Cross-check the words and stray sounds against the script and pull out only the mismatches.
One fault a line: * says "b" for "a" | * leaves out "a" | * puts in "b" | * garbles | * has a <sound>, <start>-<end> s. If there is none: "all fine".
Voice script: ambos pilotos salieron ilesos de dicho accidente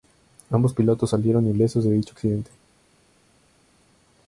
all fine